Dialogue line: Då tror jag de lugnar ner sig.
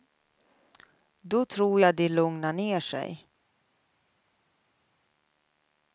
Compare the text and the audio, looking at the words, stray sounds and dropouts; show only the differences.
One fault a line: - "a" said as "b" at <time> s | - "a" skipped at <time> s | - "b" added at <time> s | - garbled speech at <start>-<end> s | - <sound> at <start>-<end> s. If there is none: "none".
none